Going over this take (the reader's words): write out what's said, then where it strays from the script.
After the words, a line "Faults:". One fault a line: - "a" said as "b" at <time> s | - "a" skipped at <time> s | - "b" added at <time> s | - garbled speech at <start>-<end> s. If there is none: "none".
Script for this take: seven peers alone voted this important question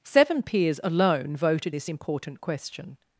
seven peers alone voted this important question
Faults:
none